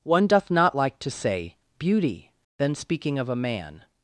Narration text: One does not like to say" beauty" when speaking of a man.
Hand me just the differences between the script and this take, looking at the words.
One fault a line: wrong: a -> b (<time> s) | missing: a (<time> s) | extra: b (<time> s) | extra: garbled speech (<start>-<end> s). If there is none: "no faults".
wrong: does -> doth (0.2 s)
wrong: when -> then (2.6 s)